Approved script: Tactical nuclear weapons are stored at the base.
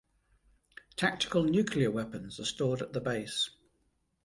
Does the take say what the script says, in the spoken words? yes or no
yes